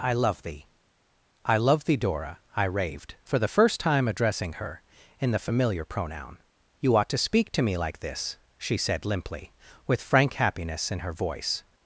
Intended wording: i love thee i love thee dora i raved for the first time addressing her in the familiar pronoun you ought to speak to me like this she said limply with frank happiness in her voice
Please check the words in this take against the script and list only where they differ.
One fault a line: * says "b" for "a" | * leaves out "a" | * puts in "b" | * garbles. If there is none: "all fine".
all fine